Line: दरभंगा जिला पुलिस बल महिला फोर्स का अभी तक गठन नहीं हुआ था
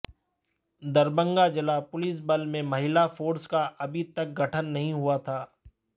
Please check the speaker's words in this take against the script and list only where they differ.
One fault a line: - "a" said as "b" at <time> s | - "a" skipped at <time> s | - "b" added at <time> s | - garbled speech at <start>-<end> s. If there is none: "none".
- "में" added at 2.5 s